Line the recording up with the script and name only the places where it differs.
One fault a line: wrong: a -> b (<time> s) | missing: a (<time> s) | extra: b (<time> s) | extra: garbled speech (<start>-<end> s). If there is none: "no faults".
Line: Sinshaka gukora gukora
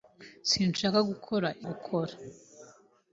no faults